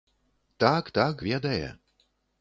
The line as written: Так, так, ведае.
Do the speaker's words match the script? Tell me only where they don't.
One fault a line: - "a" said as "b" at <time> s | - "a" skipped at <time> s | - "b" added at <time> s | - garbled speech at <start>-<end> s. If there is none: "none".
none